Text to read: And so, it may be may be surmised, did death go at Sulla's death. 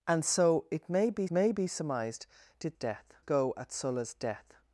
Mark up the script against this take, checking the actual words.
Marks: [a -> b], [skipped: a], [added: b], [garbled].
And so, it may be may be surmised, did death go at Sulla's death.